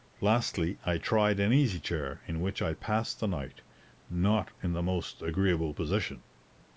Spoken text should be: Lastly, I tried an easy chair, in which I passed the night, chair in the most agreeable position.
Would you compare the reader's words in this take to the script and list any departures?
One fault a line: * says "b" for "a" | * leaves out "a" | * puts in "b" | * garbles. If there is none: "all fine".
* says "not" for "chair"